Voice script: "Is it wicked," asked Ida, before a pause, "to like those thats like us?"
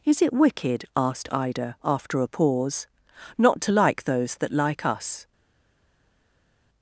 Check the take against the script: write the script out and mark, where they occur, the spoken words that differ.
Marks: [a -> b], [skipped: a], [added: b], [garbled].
"Is it wicked," asked Ida, [before -> after] a pause, [added: not] "to like those [thats -> that] like us?"